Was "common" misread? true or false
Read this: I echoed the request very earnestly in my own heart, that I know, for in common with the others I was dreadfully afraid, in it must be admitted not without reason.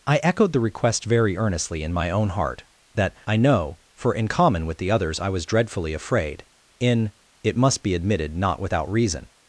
false